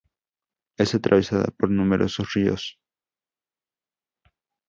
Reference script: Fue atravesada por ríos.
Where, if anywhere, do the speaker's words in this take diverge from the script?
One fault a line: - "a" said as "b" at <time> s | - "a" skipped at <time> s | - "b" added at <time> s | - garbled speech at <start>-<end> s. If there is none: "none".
- "Fue" said as "Es" at 0.8 s
- "numerosos" added at 1.7 s